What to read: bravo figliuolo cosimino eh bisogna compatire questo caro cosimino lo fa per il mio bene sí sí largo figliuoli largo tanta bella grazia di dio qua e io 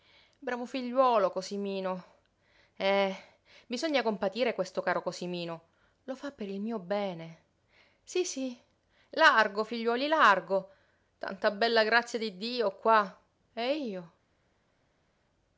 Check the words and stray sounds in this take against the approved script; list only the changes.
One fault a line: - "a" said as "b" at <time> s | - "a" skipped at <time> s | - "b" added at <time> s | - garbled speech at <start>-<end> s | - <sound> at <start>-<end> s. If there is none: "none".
none